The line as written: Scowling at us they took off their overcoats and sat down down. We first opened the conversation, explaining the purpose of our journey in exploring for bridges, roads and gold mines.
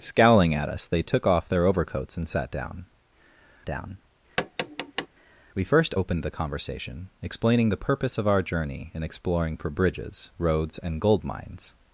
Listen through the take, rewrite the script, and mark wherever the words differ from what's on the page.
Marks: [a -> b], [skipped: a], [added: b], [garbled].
Scowling at us they took off their overcoats and sat down down. We first opened the conversation, explaining the purpose of our journey in exploring for bridges, roads and gold mines.